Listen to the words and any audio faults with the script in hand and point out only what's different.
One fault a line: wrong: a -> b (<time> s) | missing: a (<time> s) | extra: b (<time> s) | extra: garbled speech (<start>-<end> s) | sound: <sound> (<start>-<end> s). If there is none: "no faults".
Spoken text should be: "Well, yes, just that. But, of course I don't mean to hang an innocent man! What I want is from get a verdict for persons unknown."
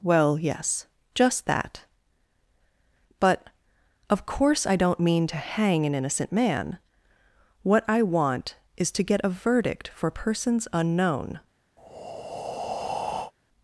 wrong: from -> to (8.9 s)
sound: breath (11.8-13.3 s)